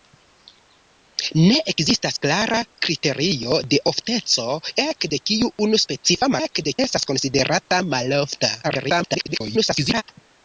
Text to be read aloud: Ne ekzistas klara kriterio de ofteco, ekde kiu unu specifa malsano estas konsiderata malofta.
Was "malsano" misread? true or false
true